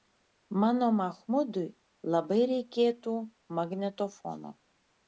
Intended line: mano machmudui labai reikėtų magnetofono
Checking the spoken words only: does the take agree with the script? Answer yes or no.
yes